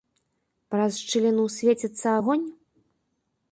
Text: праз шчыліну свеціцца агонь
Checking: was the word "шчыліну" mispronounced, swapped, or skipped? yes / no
no